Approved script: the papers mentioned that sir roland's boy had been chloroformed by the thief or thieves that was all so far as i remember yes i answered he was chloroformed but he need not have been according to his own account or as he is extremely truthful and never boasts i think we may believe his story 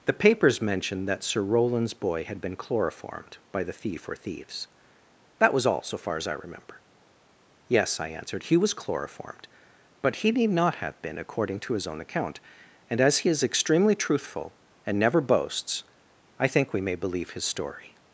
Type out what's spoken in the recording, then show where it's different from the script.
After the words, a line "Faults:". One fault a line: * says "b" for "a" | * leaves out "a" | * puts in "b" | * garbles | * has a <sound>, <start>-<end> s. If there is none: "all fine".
the papers mentioned that sir roland's boy had been chloroformed by the thief or thieves that was all so far as i remember yes i answered he was chloroformed but he need not have been according to his own account and as he is extremely truthful and never boasts i think we may believe his story
Faults:
* says "and" for "or"